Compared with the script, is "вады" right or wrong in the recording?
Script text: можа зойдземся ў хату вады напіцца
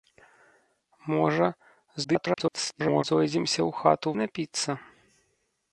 wrong